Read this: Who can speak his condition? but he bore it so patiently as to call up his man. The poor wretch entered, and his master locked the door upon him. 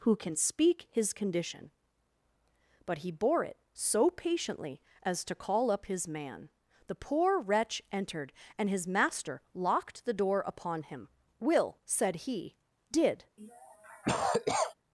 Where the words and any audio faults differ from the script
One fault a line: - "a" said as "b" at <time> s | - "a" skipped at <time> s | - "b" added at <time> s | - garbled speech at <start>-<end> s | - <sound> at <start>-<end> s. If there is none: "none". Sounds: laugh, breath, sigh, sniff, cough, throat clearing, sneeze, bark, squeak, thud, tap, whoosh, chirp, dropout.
- "Will said he did" added at 11.4 s
- cough at 13.4-14.7 s